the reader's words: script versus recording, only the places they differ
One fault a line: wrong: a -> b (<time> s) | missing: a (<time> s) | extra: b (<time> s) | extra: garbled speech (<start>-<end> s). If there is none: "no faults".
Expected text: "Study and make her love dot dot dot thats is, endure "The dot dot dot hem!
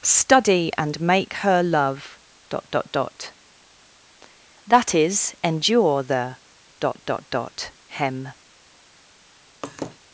wrong: thats -> that (4.7 s)